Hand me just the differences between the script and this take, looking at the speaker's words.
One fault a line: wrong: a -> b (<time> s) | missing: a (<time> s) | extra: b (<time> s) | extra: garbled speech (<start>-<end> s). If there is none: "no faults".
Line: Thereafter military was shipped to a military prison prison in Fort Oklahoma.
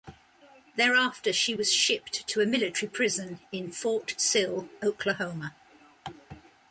wrong: military -> she (1.3 s)
missing: prison (3.4 s)
extra: Sill (4.2 s)